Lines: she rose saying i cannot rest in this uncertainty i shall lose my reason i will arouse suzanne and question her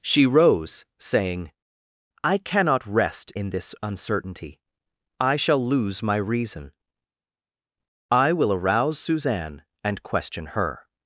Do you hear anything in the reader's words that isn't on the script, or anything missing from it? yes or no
no